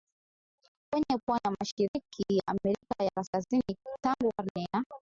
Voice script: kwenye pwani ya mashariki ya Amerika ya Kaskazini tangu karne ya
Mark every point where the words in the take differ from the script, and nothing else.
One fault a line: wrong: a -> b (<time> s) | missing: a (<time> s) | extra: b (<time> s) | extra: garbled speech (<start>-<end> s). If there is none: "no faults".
no faults